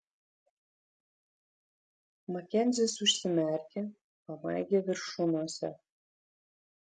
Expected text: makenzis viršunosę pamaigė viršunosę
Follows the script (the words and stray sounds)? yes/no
no